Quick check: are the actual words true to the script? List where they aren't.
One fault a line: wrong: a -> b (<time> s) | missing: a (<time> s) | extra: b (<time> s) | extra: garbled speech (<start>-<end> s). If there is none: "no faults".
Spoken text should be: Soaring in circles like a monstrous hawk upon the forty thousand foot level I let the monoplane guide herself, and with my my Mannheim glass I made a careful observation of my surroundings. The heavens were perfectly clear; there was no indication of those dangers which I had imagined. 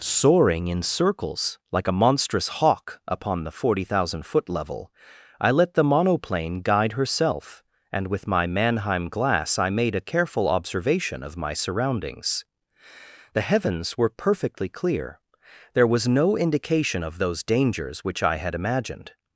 missing: my (8.5 s)